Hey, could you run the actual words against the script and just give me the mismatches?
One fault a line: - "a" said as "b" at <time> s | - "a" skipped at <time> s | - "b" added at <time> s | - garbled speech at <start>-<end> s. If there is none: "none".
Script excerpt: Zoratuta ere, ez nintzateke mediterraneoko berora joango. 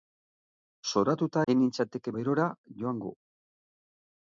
- "ere" skipped at 1.4 s
- "mediterraneoko" skipped at 2.1 s